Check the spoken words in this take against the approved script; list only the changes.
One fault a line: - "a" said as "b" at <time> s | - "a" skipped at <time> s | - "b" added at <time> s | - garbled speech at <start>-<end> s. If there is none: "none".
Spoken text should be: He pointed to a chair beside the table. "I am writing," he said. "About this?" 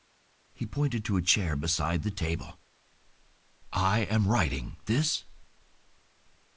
- "he said About" skipped at 4.8 s